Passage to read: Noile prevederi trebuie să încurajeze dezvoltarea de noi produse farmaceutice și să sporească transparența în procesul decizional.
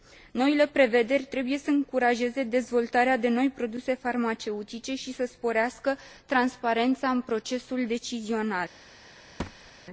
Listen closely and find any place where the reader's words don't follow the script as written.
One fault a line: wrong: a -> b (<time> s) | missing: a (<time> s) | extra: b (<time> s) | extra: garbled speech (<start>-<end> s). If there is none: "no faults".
no faults